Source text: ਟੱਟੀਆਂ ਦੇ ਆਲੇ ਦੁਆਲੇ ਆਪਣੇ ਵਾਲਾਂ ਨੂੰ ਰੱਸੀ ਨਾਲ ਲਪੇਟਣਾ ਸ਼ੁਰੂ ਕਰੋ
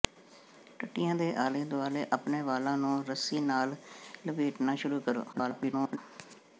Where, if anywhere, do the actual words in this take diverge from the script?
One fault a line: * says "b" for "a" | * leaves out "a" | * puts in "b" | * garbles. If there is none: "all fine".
* garbles